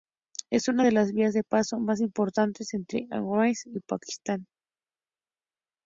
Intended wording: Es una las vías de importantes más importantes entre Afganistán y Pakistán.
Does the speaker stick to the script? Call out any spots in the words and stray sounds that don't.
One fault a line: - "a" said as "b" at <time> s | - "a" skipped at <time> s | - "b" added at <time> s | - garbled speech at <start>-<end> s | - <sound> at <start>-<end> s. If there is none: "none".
- "de" added at 0.8 s
- "importantes" said as "paso" at 1.4 s